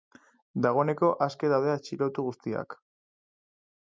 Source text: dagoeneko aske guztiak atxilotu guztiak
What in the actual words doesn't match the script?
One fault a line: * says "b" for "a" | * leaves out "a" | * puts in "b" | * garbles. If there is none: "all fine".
* says "daude" for "guztiak"